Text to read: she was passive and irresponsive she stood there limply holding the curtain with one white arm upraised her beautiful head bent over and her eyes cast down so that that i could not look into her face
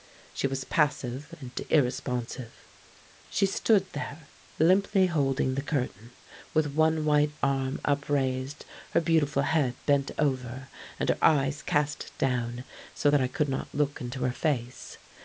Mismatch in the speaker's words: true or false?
true